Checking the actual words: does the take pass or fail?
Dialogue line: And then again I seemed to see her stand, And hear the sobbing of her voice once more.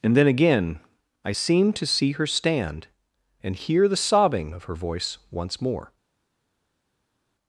pass